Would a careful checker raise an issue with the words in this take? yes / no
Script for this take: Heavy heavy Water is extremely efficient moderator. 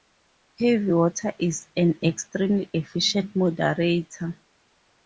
yes